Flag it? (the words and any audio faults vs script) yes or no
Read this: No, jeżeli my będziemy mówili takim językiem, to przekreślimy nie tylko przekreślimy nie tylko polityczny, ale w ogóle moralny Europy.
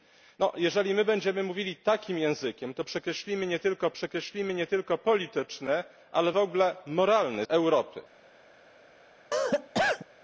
yes